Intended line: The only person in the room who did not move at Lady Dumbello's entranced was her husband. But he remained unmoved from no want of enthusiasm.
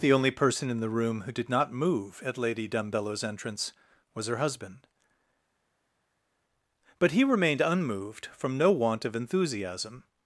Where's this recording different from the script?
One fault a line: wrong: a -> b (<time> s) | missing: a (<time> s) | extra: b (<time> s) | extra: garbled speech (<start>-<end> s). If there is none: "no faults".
wrong: entranced -> entrance (3.2 s)